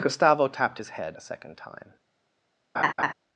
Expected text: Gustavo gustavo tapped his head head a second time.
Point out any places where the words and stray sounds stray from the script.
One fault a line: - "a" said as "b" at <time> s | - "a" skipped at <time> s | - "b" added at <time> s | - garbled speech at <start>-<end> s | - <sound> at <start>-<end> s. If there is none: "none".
- "gustavo" skipped at 0.5 s
- "head" skipped at 1.2 s
- laugh at 2.7-3.1 s